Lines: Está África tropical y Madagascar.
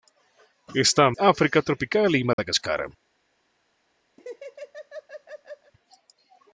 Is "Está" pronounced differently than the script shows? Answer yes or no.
no